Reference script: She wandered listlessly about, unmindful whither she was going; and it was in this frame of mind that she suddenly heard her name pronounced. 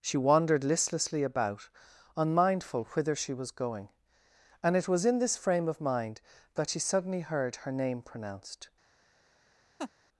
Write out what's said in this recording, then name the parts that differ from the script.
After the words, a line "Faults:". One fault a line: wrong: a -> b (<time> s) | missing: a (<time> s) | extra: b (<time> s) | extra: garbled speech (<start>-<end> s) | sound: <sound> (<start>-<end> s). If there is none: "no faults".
She wandered listlessly about, unmindful whither she was going; and it was in this frame of mind that she suddenly heard her name pronounced.
Faults:
sound: laugh (9.8-9.9 s)